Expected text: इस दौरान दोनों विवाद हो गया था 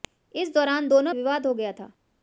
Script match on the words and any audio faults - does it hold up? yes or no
yes